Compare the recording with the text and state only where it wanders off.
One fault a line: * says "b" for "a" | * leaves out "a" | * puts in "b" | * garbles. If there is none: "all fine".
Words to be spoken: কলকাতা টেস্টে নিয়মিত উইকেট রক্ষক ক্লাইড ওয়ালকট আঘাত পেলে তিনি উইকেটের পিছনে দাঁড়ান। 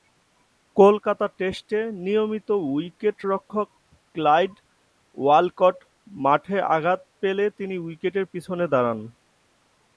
* puts in "মাঠে"